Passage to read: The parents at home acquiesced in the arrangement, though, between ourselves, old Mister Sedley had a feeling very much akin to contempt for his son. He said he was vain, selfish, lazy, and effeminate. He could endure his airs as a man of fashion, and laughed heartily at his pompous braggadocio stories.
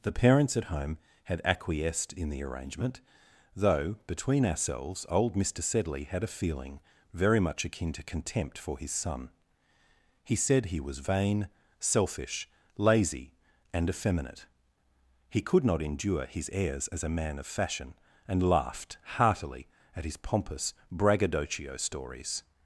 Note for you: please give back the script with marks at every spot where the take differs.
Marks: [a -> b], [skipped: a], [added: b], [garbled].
The parents at home [added: had] acquiesced in the arrangement, though, between ourselves, old Mister Sedley had a feeling very much akin to contempt for his son. He said he was vain, selfish, lazy, and effeminate. He could [added: not] endure his airs as a man of fashion, and laughed heartily at his pompous braggadocio stories.